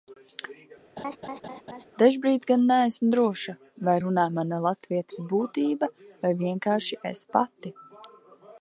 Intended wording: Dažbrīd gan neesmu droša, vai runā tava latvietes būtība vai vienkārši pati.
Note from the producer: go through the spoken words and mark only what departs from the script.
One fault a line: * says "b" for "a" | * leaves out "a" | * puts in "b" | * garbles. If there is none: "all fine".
* says "mana" for "tava"
* puts in "es"